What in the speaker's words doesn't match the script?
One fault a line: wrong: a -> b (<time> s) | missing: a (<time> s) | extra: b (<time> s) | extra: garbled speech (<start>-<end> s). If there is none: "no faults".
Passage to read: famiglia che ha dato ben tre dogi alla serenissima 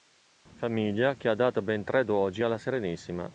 no faults